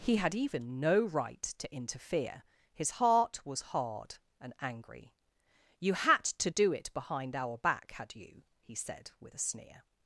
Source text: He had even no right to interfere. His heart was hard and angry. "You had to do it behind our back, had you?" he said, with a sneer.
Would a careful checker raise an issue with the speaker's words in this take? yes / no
no